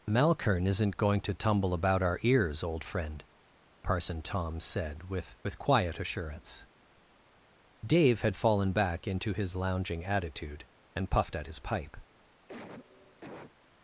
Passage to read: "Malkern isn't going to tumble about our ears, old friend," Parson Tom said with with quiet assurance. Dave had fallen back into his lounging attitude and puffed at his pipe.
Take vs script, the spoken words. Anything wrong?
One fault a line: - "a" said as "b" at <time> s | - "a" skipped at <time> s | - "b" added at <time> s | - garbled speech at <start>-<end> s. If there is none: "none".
none